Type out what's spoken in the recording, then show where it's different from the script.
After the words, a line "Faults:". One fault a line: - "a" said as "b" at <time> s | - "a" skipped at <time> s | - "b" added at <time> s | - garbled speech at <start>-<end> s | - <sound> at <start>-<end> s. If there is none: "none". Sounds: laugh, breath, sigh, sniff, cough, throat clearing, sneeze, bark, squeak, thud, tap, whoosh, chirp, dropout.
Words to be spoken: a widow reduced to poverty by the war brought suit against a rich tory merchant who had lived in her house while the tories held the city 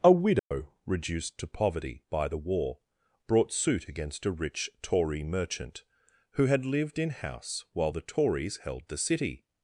a widow reduced to poverty by the war brought suit against a rich tory merchant who had lived in house while the tories held the city
Faults:
- dropout at 0.4-0.5 s
- "her" skipped at 7.1 s